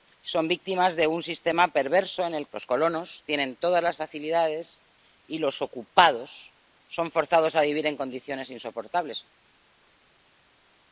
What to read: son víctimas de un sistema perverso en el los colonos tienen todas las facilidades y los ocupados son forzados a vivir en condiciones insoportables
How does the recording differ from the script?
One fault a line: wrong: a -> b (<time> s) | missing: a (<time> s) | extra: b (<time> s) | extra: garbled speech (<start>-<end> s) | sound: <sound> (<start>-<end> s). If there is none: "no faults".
no faults